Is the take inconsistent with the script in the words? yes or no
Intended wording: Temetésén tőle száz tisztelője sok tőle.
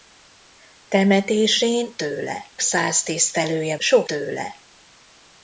no